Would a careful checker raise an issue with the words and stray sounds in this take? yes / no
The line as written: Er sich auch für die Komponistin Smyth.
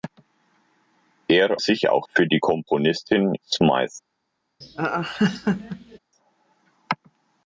yes